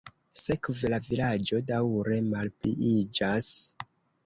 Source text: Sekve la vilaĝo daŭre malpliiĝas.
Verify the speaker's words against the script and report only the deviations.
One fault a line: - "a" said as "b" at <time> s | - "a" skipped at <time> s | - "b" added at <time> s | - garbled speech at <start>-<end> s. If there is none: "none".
none